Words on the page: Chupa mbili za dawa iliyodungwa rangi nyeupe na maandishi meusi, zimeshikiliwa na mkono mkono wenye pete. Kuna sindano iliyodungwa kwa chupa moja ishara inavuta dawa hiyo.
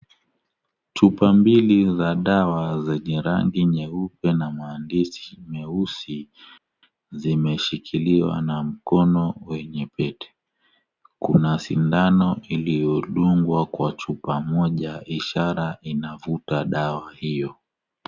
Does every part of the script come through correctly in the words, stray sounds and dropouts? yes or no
no